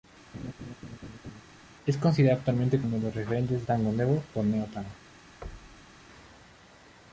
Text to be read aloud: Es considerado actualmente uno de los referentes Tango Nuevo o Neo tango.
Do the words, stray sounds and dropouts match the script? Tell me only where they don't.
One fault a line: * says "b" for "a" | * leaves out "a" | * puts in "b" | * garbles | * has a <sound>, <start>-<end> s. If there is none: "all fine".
* has a laugh, 0.3-1.4 s
* has a thud, 5.4-6.0 s